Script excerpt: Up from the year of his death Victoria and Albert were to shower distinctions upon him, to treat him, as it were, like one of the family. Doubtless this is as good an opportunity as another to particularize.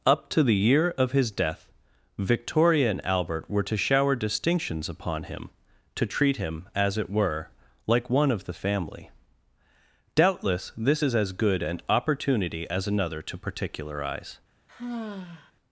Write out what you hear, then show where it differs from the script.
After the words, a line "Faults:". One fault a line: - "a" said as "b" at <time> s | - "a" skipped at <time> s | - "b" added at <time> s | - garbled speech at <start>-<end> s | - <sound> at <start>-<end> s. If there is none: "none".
Up to the year of his death Victoria and Albert were to shower distinctions upon him, to treat him, as it were, like one of the family. Doubtless this is as good an opportunity as another to particularize.
Faults:
- "from" said as "to" at 0.3 s
- sigh at 14.7-15.5 s